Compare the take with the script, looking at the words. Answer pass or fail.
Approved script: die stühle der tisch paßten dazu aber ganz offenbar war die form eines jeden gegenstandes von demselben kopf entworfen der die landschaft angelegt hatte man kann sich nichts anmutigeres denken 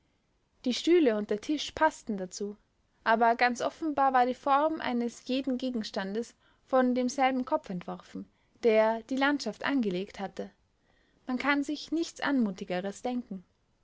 fail